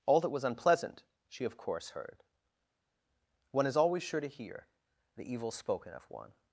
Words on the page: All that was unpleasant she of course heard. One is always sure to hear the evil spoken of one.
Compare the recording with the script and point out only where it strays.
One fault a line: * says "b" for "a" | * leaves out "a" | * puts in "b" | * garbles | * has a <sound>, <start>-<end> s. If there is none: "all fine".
all fine